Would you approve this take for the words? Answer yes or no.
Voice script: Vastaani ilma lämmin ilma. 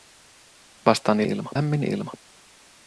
yes